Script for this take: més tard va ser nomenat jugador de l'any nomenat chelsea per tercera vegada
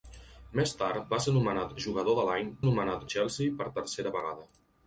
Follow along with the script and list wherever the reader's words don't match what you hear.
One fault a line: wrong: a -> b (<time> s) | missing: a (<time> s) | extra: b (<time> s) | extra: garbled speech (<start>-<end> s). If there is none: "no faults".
no faults